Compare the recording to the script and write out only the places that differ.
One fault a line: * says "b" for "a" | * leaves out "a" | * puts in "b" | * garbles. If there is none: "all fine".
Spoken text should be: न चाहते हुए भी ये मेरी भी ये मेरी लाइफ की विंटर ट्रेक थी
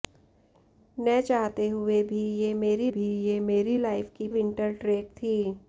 all fine